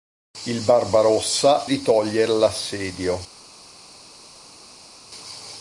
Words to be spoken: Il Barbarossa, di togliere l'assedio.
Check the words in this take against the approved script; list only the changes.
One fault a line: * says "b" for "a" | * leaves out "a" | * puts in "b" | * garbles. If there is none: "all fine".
all fine